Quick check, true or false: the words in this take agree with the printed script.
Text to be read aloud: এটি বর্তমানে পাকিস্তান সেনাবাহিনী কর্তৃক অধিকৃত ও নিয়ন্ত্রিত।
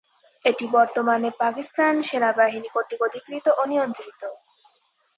true